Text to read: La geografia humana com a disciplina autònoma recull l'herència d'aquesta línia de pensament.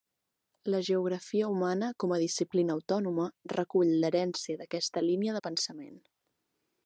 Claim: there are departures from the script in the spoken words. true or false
false